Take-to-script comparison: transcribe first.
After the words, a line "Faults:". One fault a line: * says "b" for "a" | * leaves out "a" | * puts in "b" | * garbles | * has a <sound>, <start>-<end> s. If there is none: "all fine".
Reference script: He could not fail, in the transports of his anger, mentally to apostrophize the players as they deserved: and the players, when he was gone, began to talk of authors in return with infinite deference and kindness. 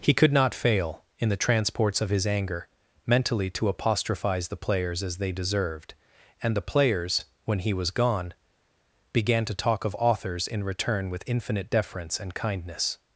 He could not fail, in the transports of his anger, mentally to apostrophize the players as they deserved: and the players, when he was gone, began to talk of authors in return with infinite deference and kindness.
Faults:
all fine